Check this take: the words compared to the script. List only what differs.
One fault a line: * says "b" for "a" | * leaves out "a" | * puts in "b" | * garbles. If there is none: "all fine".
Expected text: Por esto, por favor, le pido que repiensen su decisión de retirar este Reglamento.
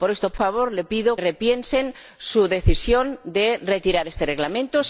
* leaves out "por"
* leaves out "que"